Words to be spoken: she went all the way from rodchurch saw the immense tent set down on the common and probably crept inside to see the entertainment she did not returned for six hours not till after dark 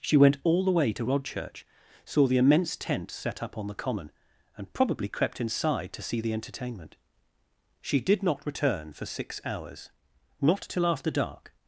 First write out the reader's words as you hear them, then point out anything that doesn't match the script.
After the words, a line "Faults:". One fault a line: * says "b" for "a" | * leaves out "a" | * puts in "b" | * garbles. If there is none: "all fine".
she went all the way to rodchurch saw the immense tent set up on the common and probably crept inside to see the entertainment she did not return for six hours not till after dark
Faults:
* says "to" for "from"
* says "up" for "down"
* says "return" for "returned"